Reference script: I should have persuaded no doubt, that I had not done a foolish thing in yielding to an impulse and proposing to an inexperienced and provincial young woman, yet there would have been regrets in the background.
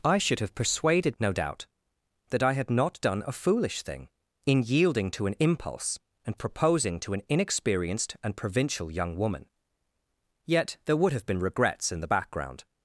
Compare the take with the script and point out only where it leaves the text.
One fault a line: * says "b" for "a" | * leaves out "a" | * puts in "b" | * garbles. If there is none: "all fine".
all fine